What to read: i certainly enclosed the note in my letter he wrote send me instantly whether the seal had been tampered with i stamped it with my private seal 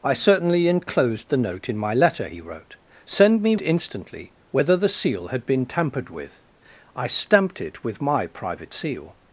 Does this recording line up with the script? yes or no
yes